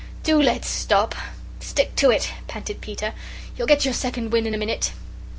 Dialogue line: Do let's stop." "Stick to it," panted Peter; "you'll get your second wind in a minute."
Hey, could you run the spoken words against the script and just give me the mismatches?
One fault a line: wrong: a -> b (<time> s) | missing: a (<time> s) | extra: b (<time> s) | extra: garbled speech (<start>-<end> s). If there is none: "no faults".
no faults